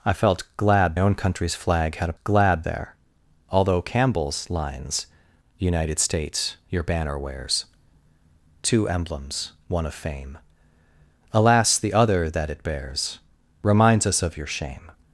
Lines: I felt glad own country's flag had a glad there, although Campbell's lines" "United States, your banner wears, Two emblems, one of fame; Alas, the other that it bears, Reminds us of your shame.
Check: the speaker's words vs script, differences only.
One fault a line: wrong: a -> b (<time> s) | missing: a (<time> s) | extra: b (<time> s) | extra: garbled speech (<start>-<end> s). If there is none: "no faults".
no faults